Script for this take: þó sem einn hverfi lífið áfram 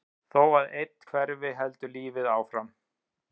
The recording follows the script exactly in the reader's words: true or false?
false